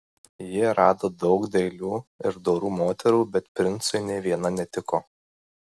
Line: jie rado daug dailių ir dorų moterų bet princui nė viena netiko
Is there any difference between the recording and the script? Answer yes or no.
no